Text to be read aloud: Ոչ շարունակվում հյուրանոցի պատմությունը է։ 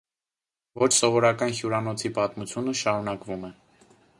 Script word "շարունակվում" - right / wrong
wrong